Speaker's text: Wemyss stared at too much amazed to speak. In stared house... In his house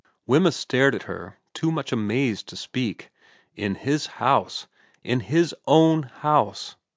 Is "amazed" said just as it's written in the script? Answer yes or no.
yes